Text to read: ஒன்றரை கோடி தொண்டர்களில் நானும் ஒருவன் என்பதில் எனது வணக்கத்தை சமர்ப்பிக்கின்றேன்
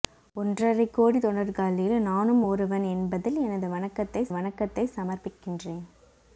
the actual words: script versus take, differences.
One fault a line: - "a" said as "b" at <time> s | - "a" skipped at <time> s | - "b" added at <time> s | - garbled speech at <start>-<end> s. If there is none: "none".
- "வணக்கத்தை" added at 4.3 s